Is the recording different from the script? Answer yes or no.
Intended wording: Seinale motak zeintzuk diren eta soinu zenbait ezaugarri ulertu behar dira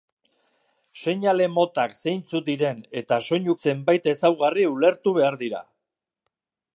no